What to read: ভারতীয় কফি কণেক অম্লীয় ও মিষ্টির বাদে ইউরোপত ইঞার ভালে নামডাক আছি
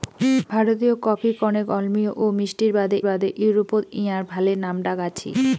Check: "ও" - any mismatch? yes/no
no